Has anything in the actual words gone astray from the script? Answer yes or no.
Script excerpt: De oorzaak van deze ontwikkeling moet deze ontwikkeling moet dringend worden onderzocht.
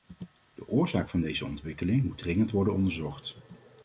yes